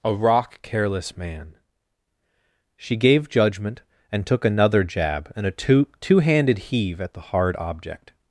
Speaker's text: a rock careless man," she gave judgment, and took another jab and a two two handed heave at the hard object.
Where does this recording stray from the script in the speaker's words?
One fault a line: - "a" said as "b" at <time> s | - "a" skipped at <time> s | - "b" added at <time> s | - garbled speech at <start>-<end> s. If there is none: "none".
none